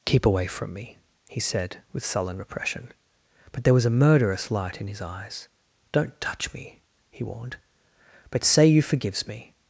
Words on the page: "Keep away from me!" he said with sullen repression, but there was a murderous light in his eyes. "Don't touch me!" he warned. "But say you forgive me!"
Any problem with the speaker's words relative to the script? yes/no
yes